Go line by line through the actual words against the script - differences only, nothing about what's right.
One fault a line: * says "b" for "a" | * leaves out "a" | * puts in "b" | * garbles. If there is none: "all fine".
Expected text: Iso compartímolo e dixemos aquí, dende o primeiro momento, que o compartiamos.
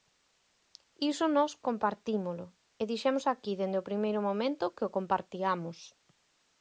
* puts in "nós"